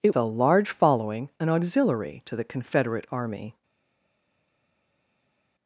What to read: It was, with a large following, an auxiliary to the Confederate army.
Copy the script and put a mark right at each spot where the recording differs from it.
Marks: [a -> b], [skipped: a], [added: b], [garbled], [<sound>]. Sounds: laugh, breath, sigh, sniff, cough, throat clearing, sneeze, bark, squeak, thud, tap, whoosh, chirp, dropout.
It [skipped: was, with] a large following, an auxiliary to the Confederate army.